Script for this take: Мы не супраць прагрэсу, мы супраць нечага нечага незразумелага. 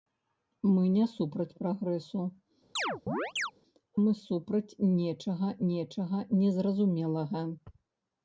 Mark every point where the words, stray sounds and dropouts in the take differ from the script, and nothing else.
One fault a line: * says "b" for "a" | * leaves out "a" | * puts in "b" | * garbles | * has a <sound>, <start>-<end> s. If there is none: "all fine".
* has a chirp, 2.8-3.5 s